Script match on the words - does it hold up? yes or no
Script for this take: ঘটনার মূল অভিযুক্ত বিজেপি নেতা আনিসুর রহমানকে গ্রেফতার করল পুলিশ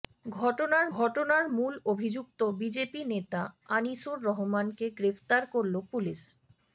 no